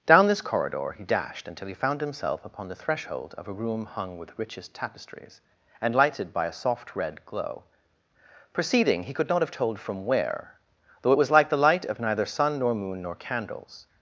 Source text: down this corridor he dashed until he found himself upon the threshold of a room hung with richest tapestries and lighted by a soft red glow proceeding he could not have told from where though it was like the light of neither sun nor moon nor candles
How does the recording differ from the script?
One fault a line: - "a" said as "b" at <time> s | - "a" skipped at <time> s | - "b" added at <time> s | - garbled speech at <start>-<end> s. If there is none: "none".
none